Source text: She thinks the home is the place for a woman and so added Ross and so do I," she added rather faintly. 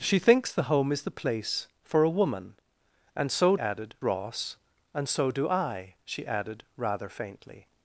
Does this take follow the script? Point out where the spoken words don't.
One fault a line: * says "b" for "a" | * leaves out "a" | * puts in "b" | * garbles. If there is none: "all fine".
all fine